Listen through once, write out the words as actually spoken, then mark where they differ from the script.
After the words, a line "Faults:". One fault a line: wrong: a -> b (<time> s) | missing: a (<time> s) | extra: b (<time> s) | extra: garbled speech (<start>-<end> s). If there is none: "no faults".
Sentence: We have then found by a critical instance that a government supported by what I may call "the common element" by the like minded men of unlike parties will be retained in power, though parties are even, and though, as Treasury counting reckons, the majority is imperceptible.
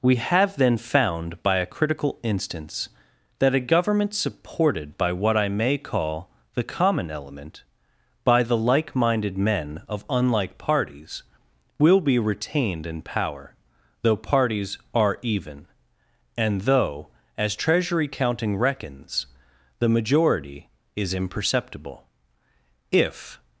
We have then found by a critical instance that a government supported by what I may call "the common element" by the like minded men of unlike parties will be retained in power, though parties are even, and though, as Treasury counting reckons, the majority is imperceptible. If
Faults:
extra: If (22.9 s)